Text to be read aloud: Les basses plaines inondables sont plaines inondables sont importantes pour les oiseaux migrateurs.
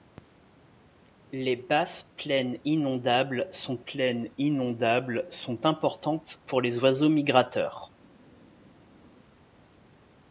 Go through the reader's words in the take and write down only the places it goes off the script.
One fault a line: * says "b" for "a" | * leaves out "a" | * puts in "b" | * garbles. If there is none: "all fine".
all fine